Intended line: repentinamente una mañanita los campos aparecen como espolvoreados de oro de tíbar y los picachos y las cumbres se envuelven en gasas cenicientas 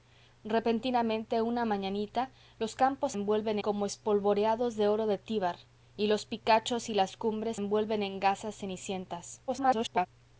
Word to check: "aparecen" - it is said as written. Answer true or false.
false